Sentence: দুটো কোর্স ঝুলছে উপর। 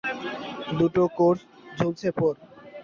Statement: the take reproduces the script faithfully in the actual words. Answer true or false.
true